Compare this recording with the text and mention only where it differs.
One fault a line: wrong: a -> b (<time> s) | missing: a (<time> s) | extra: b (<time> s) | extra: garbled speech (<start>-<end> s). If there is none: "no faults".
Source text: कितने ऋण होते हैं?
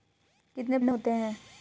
no faults